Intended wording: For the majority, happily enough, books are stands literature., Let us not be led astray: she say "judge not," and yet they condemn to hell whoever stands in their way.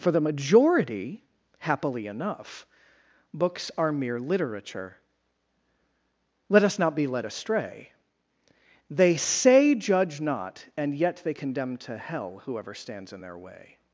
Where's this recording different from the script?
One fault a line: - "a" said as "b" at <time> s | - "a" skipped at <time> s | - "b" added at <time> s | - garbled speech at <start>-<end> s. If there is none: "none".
- "stands" said as "mere" at 3.9 s
- "she" said as "they" at 8.9 s